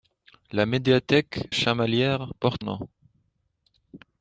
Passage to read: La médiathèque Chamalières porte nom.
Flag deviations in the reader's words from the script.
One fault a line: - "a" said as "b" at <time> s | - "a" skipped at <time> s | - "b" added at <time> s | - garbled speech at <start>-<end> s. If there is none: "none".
none